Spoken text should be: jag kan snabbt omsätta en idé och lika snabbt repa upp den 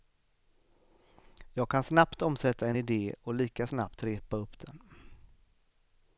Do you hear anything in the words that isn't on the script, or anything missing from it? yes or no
no